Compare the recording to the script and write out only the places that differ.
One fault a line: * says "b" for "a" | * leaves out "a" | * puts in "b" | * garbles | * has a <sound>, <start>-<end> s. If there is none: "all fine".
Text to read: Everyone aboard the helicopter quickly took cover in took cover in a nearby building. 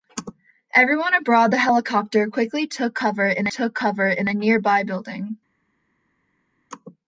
all fine